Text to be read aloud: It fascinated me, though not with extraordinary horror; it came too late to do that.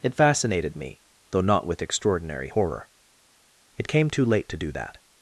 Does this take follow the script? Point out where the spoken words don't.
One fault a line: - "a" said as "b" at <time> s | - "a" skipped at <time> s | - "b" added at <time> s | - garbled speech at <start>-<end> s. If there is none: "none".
none